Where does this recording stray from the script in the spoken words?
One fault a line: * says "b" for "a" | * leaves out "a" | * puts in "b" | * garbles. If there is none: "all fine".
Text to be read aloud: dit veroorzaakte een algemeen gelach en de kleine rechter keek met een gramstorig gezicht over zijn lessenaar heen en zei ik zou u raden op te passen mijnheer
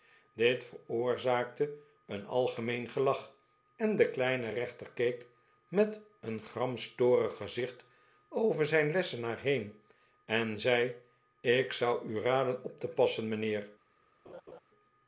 all fine